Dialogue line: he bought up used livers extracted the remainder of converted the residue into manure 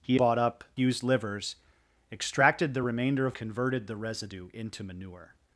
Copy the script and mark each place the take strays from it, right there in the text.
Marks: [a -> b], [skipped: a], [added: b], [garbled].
he bought up used livers extracted the remainder of converted the residue into manure